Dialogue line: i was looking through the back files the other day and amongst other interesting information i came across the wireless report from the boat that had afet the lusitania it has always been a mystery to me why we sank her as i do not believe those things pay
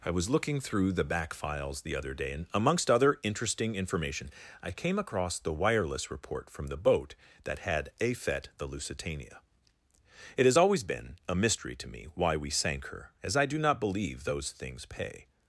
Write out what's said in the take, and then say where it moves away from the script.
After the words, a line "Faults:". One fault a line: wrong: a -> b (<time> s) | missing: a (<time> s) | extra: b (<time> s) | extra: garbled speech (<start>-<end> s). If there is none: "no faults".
i was looking through the back files the other day and amongst other interesting information i came across the wireless report from the boat that had afet the lusitania it has always been a mystery to me why we sank her as i do not believe those things pay
Faults:
no faults